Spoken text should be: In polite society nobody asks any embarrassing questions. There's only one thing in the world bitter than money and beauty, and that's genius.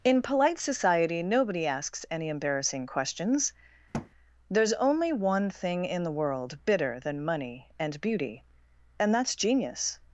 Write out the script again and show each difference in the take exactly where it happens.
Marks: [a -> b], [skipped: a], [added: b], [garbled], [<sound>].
In polite society nobody asks any embarrassing questions. [thud] There's only one thing in the world bitter than money and beauty, and that's genius.